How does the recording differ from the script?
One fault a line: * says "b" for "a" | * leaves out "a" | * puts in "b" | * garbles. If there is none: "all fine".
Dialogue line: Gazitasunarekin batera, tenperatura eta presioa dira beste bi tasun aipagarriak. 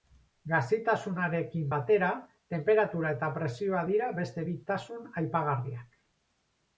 all fine